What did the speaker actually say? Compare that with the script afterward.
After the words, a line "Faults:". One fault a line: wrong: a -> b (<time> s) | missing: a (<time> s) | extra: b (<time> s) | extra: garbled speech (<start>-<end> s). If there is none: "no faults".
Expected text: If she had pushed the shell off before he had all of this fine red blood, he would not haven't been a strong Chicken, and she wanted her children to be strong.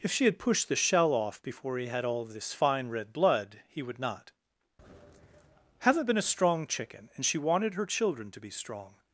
If she had pushed the shell off before he had all of this fine red blood, he would not haven't been a strong Chicken, and she wanted her children to be strong.
Faults:
no faults